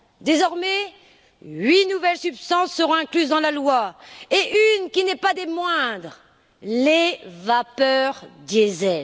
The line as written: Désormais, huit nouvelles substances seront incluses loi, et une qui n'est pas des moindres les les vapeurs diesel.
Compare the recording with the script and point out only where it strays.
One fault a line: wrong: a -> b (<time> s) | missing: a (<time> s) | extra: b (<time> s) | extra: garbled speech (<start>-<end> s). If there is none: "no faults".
extra: dans la (3.3 s)
missing: les (7.2 s)